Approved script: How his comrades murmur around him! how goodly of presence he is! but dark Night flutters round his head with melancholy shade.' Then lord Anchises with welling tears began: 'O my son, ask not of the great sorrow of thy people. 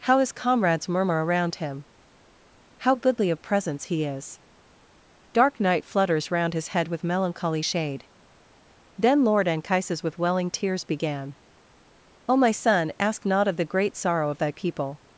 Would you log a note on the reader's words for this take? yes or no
yes